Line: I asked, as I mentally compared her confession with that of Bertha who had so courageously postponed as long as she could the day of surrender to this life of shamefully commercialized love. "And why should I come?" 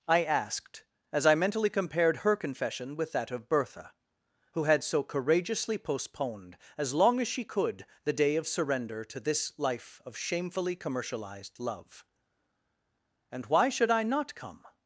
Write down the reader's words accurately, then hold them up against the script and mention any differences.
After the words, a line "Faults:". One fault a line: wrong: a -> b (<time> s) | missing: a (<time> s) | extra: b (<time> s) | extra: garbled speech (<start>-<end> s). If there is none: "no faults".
I asked, as I mentally compared her confession with that of Bertha who had so courageously postponed as long as she could the day of surrender to this life of shamefully commercialized love. "And why should I not come?"
Faults:
extra: not (14.0 s)